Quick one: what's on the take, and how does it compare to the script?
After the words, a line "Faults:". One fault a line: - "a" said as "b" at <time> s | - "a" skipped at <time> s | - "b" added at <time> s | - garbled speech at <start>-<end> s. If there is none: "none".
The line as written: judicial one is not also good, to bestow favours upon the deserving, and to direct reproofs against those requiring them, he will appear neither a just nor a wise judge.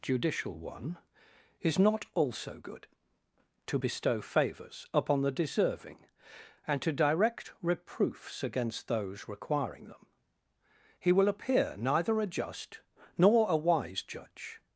judicial one is not also good, to bestow favours upon the deserving, and to direct reproofs against those requiring them, he will appear neither a just nor a wise judge.
Faults:
none